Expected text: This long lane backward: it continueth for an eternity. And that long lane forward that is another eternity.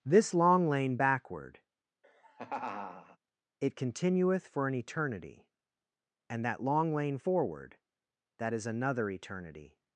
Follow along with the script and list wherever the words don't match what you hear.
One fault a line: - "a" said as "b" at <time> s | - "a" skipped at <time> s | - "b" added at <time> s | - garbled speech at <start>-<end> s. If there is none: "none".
none